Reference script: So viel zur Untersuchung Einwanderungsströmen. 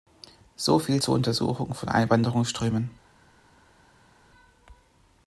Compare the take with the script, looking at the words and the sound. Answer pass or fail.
fail